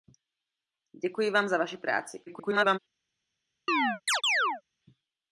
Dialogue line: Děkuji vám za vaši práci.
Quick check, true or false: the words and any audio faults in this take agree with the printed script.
false